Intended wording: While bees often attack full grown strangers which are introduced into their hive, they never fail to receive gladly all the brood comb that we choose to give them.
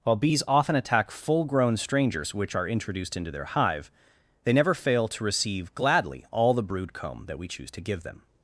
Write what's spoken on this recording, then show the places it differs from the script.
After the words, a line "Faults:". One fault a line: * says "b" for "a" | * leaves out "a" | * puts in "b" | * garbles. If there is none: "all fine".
While bees often attack full grown strangers which are introduced into their hive, they never fail to receive gladly all the brood comb that we choose to give them.
Faults:
all fine